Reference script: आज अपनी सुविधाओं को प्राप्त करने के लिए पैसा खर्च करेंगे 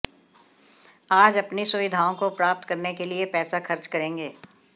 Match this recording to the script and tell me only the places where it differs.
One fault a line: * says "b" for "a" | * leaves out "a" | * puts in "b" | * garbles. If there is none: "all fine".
all fine